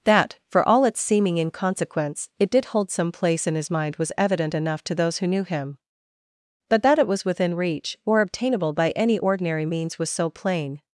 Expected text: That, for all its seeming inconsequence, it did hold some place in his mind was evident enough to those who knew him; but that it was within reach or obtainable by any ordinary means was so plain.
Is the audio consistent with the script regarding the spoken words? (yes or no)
yes